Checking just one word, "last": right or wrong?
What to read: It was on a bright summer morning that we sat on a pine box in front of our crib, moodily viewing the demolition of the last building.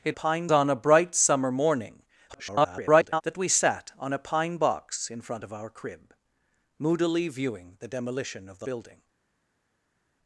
wrong